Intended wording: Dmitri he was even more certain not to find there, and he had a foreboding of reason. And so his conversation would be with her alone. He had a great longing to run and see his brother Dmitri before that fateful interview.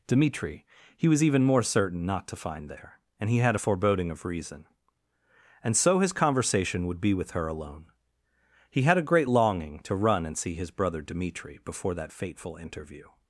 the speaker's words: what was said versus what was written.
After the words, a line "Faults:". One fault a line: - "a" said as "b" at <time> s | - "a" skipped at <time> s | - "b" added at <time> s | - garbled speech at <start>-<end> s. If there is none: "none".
Dmitri he was even more certain not to find there, and he had a foreboding of reason. And so his conversation would be with her alone. He had a great longing to run and see his brother Dmitri before that fateful interview.
Faults:
none